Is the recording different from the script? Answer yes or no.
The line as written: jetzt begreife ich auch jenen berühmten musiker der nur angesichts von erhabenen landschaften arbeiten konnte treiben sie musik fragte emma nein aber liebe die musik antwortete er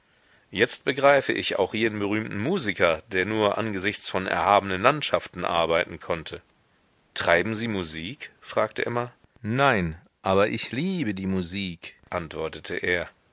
yes